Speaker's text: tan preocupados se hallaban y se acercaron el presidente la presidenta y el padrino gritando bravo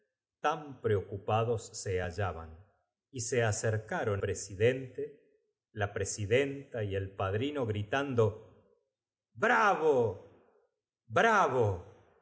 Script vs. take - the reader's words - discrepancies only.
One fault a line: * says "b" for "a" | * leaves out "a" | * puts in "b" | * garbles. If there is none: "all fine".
* leaves out "el"